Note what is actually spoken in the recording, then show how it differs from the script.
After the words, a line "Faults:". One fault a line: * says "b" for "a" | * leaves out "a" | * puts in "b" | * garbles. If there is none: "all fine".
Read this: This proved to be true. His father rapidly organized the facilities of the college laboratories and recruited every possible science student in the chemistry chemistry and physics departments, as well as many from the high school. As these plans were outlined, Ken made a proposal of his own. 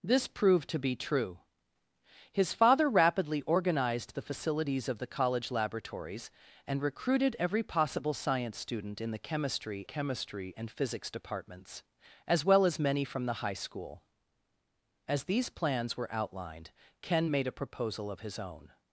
This proved to be true. His father rapidly organized the facilities of the college laboratories and recruited every possible science student in the chemistry chemistry and physics departments, as well as many from the high school. As these plans were outlined, Ken made a proposal of his own.
Faults:
all fine